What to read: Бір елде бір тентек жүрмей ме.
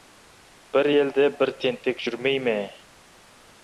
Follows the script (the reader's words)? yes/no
yes